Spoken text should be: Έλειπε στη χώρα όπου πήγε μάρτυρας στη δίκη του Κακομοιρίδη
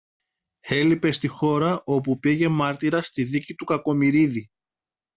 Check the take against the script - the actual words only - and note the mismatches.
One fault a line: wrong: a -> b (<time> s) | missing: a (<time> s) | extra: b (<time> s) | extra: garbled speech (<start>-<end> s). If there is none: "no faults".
no faults